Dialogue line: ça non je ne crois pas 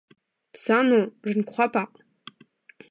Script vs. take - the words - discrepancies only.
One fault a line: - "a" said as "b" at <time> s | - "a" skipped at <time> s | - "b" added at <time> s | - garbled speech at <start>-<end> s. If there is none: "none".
none